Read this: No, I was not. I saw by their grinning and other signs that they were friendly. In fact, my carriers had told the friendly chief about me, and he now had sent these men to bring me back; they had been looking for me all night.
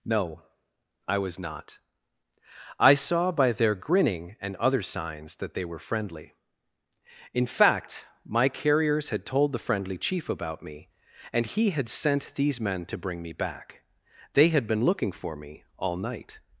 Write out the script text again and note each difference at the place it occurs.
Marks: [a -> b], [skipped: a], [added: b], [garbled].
No, I was not. I saw by their grinning and other signs that they were friendly. In fact, my carriers had told the friendly chief about me, and he [skipped: now] had sent these men to bring me back; they had been looking for me all night.